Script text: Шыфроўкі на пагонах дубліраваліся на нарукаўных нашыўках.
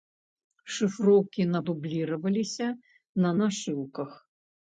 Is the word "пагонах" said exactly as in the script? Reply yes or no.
no